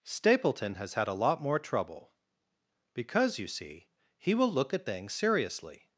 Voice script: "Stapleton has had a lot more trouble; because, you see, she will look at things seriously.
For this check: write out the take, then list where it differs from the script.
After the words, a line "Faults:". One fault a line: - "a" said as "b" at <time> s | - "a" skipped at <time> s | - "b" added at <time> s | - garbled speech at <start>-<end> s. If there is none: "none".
"Stapleton has had a lot more trouble; because, you see, he will look at things seriously.
Faults:
- "she" said as "he" at 4.2 s